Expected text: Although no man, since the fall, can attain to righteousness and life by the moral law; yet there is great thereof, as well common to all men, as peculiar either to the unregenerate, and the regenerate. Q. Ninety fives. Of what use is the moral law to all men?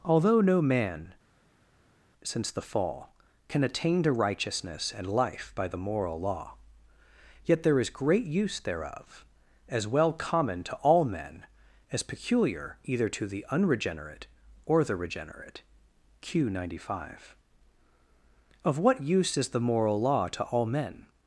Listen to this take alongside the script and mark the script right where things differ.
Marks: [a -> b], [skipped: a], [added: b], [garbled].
Although no man, since the fall, can attain to righteousness and life by the moral law; yet there is great [added: use] thereof, as well common to all men, as peculiar either to the unregenerate, [and -> or] the regenerate. Q. Ninety [fives. -> five] Of what use is the moral law to all men?